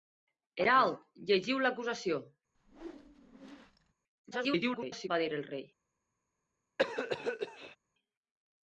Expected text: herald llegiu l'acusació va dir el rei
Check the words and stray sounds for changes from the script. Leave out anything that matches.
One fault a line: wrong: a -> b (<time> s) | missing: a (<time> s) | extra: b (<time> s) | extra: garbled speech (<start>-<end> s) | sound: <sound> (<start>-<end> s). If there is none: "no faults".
sound: whoosh (2.5-3.9 s)
extra: garbled speech (4.3-5.1 s)
sound: cough (6.8-7.8 s)